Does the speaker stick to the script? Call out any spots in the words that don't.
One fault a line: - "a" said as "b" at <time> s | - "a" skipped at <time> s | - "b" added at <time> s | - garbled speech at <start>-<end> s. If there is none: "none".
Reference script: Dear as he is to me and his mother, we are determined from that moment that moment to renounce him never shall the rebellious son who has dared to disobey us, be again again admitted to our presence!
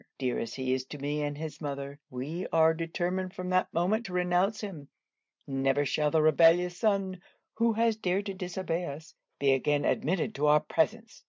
- "that moment" skipped at 4.1 s
- "again" skipped at 9.8 s